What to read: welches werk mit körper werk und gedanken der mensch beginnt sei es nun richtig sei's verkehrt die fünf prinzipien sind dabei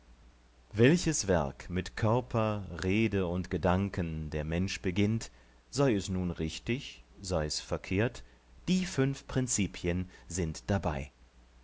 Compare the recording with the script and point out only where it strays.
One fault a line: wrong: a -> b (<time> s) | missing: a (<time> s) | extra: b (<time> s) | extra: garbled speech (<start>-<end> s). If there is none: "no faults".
wrong: werk -> rede (2.8 s)